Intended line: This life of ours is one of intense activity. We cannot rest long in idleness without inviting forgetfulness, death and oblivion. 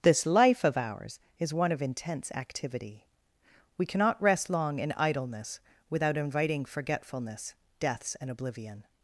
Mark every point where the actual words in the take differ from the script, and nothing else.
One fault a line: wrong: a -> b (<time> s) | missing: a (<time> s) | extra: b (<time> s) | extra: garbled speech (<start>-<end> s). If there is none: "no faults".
wrong: death -> deaths (7.8 s)